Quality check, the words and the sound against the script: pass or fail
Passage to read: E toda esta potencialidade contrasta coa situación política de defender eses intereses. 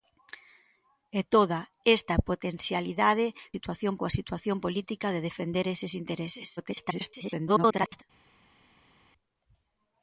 fail